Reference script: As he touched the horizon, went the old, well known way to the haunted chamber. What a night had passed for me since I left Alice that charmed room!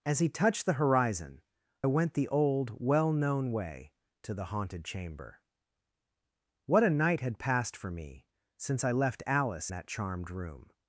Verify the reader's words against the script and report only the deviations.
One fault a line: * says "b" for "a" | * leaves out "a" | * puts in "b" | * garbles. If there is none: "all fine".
all fine